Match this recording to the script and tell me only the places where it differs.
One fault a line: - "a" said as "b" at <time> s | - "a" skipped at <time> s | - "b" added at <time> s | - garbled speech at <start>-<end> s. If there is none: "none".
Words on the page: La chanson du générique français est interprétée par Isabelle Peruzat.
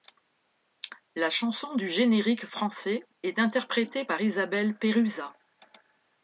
none